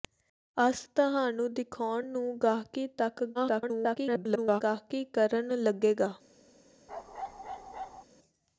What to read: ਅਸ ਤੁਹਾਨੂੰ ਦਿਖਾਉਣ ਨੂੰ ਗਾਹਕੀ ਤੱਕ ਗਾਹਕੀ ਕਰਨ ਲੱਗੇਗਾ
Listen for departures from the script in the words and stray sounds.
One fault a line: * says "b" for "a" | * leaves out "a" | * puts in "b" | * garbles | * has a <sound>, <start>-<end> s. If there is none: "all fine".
* garbles
* has a bark, 6.9-8.0 s